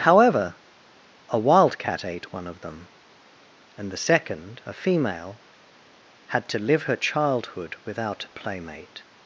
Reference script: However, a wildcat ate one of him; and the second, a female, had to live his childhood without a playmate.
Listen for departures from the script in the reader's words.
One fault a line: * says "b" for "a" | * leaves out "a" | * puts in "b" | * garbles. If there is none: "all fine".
* says "them" for "him"
* says "her" for "his"